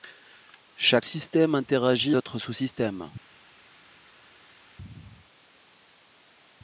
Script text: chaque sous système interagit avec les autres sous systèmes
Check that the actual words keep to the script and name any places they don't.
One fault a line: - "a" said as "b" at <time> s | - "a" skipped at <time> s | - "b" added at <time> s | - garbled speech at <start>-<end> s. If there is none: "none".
- "sous" skipped at 1.1 s
- "avec les" skipped at 2.1 s